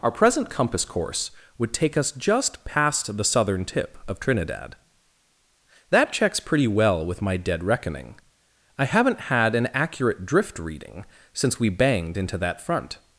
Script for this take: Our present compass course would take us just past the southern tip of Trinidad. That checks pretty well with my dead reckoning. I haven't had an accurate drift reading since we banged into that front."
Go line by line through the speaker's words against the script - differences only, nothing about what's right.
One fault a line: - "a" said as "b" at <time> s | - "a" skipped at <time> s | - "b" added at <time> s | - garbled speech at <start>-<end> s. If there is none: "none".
none